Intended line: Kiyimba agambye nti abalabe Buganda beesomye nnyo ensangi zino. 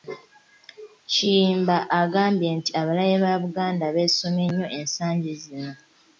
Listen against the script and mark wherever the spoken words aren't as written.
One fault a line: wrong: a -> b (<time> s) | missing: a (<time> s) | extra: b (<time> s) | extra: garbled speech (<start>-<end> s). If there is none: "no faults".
extra: ba (3.2 s)